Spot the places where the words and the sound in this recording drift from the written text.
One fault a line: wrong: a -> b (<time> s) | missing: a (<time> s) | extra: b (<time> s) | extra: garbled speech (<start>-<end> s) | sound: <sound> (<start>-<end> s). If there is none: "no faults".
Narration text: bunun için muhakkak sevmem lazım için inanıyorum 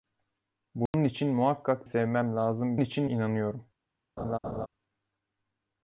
sound: dropout (0.9-0.9 s)
sound: laugh (4.2-4.7 s)